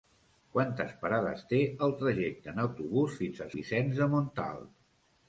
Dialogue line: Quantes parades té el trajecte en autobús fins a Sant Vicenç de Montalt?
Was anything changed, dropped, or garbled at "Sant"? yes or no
yes